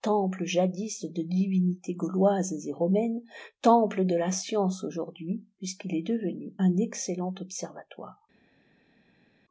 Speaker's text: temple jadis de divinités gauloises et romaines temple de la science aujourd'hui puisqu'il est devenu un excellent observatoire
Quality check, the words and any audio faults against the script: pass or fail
pass